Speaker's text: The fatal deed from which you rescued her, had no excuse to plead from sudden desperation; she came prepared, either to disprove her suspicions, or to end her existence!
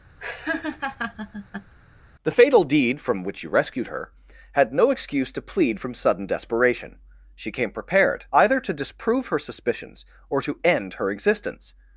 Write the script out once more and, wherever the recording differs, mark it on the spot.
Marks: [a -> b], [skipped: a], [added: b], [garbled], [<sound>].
[laugh] The fatal deed from which you rescued her, had no excuse to plead from sudden desperation; she came prepared, either to disprove her suspicions, or to end her existence!